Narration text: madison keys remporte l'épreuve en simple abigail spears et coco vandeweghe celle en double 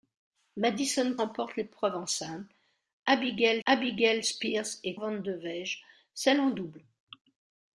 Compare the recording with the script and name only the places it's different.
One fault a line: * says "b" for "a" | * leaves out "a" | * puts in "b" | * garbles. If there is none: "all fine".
* leaves out "keys"
* puts in "abigail"
* leaves out "coco"